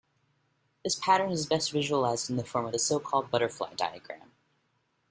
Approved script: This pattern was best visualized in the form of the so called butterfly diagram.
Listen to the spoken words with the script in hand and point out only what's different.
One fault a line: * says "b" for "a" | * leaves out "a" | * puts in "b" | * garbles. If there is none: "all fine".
* says "is" for "was"